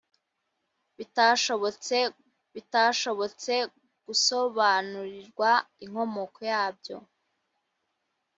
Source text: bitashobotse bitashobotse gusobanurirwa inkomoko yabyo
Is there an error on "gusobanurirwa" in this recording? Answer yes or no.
no